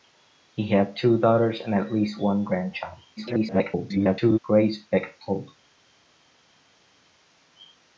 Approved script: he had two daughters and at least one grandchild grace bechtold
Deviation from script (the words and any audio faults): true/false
true